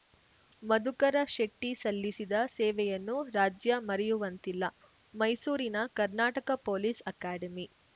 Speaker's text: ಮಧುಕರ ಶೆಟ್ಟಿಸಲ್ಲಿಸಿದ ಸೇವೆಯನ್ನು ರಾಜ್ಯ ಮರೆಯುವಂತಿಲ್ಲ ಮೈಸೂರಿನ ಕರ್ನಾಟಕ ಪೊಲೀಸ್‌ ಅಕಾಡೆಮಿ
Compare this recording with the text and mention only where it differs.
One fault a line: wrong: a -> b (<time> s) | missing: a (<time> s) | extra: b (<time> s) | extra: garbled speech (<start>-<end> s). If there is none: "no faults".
no faults